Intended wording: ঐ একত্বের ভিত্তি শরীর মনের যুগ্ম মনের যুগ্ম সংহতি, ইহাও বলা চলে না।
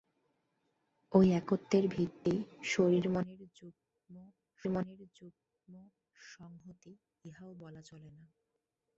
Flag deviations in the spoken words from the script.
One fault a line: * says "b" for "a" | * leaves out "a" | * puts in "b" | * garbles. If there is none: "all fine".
all fine